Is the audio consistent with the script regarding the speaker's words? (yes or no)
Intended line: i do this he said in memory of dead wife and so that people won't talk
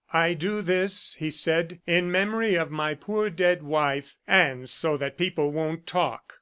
no